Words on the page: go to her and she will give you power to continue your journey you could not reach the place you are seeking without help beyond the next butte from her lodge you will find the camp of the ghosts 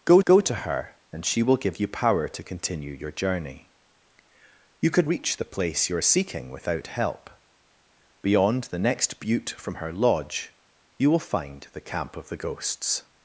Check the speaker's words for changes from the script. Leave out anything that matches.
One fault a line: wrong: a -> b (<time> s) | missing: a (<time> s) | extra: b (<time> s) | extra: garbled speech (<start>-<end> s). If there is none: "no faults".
extra: go (0.2 s)
missing: not (5.1 s)